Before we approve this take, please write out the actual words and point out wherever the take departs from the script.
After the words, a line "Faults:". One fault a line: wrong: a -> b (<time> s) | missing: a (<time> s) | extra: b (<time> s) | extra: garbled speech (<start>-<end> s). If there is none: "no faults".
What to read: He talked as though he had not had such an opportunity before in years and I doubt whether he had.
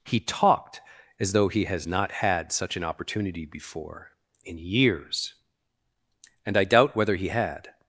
He talked as though he has not had such an opportunity before in years and I doubt whether he had.
Faults:
wrong: had -> has (1.6 s)